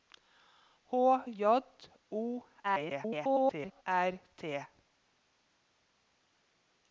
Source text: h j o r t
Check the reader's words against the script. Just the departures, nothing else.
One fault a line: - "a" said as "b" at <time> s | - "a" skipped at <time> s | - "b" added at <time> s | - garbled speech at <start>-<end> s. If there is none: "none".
- garbled speech at 2.6-3.8 s